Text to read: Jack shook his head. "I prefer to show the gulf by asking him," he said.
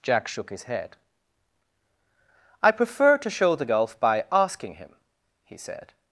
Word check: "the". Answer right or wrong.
right